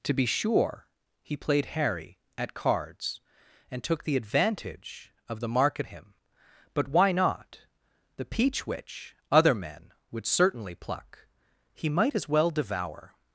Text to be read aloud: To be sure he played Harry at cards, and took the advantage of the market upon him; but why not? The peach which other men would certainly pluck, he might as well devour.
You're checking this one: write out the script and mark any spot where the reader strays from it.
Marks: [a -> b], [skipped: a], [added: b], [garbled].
To be sure he played Harry at cards, and took the advantage of the market [skipped: upon] him; but why not? The peach which other men would certainly pluck, he might as well devour.